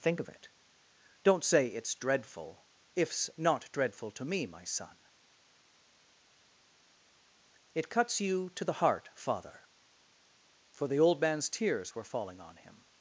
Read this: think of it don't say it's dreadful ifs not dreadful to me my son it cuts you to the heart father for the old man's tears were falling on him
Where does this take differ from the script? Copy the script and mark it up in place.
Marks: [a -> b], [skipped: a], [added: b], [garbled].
think of it don't say it's dreadful ifs not dreadful to me my son it cuts you to the heart father for the old man's tears were falling on him